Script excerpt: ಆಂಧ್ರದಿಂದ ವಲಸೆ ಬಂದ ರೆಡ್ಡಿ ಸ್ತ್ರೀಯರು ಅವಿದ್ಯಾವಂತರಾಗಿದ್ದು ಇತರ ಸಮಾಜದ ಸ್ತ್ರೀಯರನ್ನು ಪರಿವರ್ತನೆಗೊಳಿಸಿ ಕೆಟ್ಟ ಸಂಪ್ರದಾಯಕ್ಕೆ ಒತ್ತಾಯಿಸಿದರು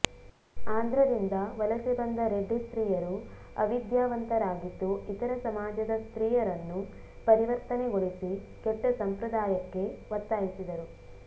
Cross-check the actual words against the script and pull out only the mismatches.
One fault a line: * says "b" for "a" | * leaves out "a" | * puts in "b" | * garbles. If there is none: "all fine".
all fine